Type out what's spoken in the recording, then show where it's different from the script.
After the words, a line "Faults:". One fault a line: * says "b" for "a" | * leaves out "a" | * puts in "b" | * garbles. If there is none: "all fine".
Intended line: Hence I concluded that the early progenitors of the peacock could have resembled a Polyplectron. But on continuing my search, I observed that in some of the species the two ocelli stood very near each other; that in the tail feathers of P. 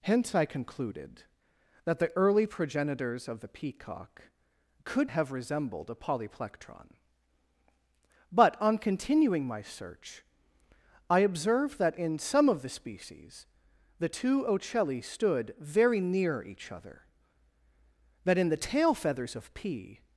Hence I concluded that the early progenitors of the peacock could have resembled a Polyplectron. But on continuing my search, I observed that in some of the species the two ocelli stood very near each other; that in the tail feathers of P.
Faults:
all fine